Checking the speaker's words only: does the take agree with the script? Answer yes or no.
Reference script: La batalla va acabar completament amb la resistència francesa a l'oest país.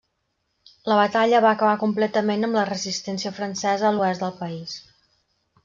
no